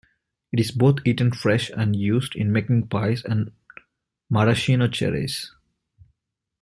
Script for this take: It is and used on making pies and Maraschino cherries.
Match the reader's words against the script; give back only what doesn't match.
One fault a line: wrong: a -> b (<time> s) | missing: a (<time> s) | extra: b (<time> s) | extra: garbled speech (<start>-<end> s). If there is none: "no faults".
extra: both eaten fresh (0.7 s)
wrong: on -> in (2.4 s)